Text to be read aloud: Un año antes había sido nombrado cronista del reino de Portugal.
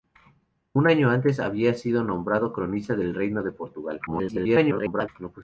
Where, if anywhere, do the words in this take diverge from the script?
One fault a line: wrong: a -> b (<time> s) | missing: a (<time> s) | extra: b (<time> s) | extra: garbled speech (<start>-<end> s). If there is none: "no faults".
extra: garbled speech (4.1-5.1 s)